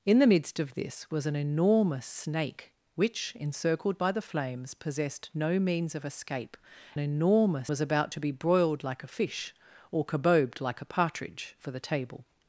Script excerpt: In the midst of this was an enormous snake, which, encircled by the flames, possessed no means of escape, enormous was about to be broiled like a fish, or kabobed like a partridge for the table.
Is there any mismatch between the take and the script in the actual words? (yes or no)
no